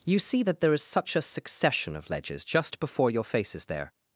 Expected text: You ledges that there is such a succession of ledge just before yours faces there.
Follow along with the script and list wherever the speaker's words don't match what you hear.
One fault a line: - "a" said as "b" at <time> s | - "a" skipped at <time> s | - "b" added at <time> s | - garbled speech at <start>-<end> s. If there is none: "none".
- "ledges" said as "see" at 0.2 s
- "ledge" said as "ledges" at 2.1 s
- "yours" said as "your" at 3.1 s